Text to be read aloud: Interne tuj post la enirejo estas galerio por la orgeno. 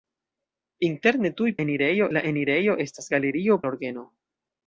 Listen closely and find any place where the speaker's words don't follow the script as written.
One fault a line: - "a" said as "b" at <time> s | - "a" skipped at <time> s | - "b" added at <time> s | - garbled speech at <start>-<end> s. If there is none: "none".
- "post" said as "enirejo" at 1.6 s
- "por" skipped at 3.6 s